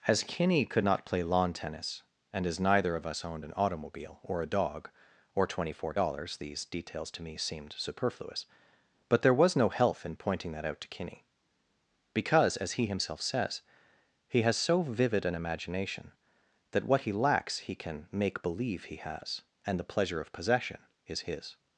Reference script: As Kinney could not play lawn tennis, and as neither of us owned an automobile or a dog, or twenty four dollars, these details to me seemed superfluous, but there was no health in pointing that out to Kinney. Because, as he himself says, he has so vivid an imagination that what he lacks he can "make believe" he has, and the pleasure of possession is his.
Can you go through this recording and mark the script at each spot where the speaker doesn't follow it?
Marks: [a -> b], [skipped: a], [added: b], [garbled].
As Kinney could not play lawn tennis, and as neither of us owned an automobile or a dog, or twenty four dollars, these details to me seemed superfluous, but there was no health in pointing that out to Kinney. Because, as he himself says, he has so vivid an imagination that what he lacks he can "make believe" he has, and the pleasure of possession is his.